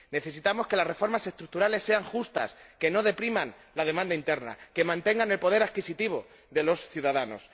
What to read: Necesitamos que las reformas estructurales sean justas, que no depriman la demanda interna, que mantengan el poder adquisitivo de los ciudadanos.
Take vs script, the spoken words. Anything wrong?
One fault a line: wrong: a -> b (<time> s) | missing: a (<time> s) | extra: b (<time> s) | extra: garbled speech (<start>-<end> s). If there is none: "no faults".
no faults